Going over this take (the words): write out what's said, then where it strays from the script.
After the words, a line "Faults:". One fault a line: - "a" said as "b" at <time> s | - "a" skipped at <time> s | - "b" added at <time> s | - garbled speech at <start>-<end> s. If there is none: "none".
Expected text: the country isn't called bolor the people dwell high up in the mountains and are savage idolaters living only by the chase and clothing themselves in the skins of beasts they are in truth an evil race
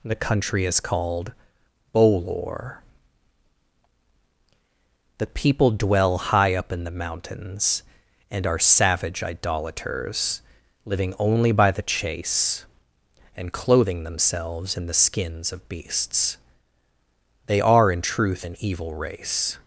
the country is called bolor the people dwell high up in the mountains and are savage idolaters living only by the chase and clothing themselves in the skins of beasts they are in truth an evil race
Faults:
- "isn't" said as "is" at 0.7 s